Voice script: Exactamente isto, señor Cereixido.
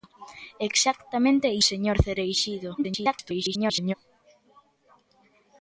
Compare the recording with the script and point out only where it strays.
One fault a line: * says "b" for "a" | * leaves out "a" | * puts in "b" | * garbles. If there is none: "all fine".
* leaves out "isto"
* garbles